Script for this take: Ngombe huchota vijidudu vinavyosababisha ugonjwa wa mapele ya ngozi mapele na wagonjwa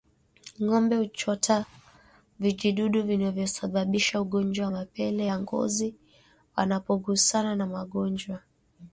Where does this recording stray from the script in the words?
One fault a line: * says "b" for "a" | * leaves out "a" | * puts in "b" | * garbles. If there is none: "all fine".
* says "wanapogusana" for "mapele"